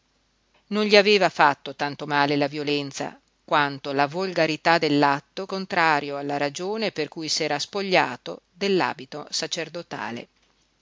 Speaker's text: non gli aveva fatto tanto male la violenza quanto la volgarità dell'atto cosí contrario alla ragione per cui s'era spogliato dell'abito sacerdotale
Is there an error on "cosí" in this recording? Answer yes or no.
yes